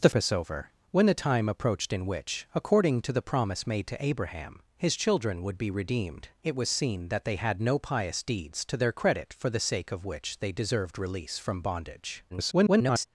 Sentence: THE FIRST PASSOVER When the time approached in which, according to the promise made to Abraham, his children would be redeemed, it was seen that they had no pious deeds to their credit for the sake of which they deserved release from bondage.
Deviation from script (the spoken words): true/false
true